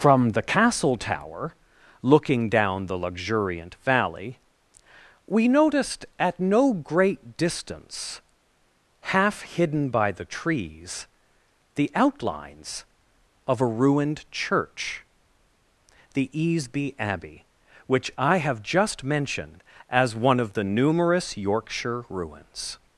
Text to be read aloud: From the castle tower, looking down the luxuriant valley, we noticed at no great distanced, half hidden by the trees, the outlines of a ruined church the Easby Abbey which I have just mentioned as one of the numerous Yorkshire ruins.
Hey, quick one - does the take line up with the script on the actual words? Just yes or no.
no